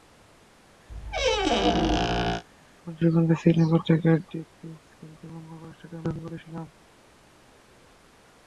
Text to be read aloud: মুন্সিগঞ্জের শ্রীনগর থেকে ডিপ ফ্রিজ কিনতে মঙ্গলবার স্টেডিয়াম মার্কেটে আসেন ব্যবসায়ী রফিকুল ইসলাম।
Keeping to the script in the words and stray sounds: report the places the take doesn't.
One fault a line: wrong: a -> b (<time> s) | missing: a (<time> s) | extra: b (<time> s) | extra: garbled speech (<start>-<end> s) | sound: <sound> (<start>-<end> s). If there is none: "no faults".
sound: squeak (0.9-2.4 s)
missing: মার্কেটে আসেন ব্যবসায়ী (6.0 s)